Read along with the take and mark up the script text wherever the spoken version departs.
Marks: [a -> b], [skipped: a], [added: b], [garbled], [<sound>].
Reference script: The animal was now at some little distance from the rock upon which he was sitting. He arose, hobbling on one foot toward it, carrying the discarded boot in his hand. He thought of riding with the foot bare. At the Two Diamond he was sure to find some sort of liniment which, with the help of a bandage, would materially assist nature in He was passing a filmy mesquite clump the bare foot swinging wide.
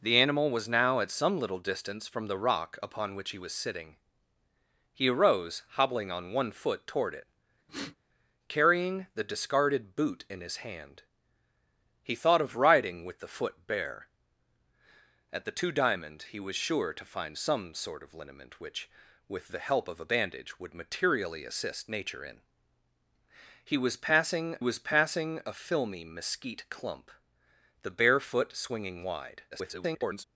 The animal was now at some little distance from the rock upon which he was sitting. He arose, hobbling on one foot toward it, [sniff] carrying the discarded boot in his hand. He thought of riding with the foot bare. At the Two Diamond he was sure to find some sort of liniment which, with the help of a bandage, would materially assist nature in He was passing [added: was passing] a filmy mesquite clump the bare foot swinging wide. [garbled]